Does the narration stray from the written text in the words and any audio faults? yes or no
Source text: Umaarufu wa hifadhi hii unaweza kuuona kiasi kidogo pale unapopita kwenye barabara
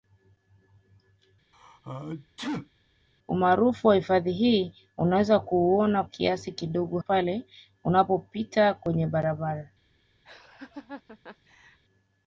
yes